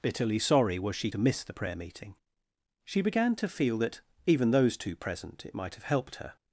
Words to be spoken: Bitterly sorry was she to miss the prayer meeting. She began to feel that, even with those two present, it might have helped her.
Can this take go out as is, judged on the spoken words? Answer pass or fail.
fail